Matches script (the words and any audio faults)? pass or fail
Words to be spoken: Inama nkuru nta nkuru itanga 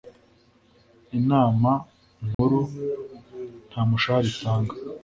fail